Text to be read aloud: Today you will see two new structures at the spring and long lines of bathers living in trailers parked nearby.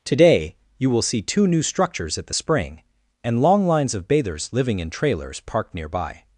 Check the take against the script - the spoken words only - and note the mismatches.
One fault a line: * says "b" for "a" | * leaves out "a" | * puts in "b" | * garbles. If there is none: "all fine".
all fine